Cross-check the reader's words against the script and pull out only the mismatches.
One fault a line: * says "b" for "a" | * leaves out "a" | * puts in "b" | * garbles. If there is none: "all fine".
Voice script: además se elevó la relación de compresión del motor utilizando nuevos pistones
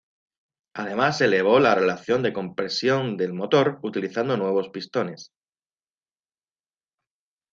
all fine